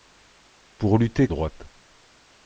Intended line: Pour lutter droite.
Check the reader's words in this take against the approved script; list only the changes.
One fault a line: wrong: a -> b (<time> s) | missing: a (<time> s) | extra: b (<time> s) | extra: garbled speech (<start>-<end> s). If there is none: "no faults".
no faults